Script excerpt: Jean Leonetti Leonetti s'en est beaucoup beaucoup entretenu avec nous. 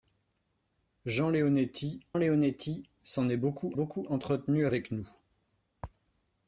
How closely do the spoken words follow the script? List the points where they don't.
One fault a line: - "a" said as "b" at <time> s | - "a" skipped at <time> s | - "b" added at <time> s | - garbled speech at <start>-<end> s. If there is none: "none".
none